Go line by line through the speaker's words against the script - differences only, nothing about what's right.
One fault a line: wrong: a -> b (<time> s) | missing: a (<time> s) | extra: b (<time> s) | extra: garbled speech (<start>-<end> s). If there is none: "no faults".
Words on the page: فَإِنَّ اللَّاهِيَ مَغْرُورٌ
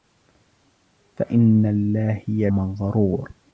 no faults